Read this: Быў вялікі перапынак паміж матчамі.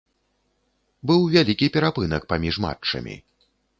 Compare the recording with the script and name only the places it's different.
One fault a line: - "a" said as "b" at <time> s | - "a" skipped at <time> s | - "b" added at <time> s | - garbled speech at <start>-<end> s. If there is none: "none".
none